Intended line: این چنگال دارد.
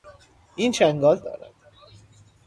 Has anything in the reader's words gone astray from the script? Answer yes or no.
no